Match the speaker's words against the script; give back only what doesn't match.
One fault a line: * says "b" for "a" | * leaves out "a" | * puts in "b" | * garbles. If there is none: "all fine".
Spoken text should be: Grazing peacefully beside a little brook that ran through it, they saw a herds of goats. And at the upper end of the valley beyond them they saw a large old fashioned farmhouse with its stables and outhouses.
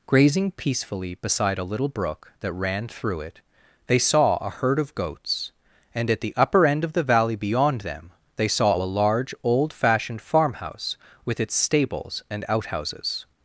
* says "herd" for "herds"